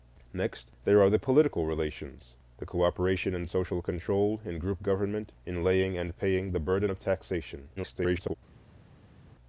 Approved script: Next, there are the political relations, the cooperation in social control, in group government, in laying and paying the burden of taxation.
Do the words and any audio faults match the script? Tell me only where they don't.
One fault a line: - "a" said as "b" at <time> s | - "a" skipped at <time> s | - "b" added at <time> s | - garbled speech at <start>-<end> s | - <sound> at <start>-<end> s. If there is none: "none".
- garbled speech at 7.8-8.3 s